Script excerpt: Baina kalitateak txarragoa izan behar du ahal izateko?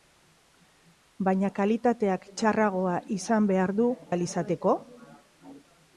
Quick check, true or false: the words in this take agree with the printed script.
true